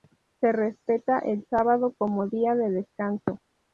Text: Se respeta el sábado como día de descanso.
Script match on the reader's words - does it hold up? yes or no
yes